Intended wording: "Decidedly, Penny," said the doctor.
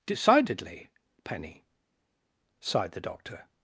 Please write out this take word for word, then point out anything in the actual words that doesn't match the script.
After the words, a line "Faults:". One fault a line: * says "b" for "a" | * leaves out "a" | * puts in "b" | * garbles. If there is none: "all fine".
"Decidedly, Penny," sighed the doctor.
Faults:
* says "sighed" for "said"